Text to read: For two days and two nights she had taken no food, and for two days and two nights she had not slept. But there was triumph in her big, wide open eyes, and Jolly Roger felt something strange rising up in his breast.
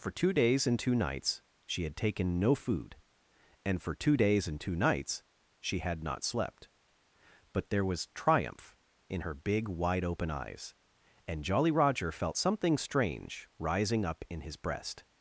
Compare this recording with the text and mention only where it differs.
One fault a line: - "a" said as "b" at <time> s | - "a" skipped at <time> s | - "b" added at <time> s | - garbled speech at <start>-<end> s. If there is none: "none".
none